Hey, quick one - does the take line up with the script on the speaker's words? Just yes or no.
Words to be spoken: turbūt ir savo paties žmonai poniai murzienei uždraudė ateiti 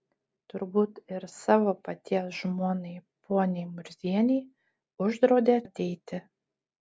yes